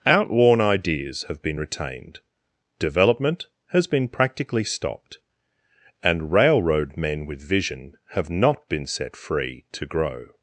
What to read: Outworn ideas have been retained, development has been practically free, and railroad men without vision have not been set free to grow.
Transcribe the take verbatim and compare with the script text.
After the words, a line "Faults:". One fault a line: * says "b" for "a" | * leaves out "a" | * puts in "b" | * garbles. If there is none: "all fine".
Outworn ideas have been retained, development has been practically stopped, and railroad men with vision have not been set free to grow.
Faults:
* says "stopped" for "free"
* says "with" for "without"